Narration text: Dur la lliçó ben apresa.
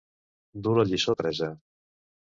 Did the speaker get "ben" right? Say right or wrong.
wrong